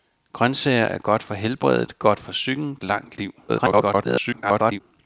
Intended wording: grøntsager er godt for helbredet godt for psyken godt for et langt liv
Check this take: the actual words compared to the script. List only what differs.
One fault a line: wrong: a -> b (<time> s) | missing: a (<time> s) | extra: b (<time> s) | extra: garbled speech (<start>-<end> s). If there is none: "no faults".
missing: godt for et (2.8 s)
extra: garbled speech (3.5-4.8 s)